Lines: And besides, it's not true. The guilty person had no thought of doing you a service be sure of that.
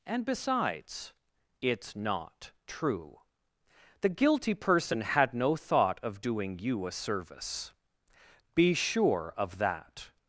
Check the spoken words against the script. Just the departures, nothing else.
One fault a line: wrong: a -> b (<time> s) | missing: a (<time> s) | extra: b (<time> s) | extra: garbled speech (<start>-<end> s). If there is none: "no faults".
no faults